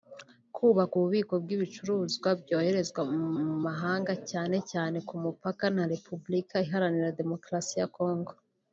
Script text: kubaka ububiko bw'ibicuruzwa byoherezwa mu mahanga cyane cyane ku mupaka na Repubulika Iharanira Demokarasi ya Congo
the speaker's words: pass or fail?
fail